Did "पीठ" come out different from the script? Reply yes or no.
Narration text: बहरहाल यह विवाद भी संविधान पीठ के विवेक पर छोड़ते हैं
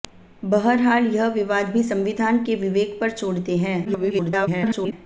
yes